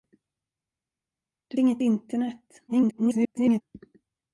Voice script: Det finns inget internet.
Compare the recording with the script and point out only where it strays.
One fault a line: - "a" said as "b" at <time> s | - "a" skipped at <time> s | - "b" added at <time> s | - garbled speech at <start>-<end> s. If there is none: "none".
- "finns" skipped at 1.6 s
- garbled speech at 2.7-3.6 s